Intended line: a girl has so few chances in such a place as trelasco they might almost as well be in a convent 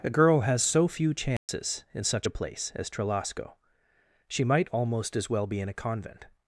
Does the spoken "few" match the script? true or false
true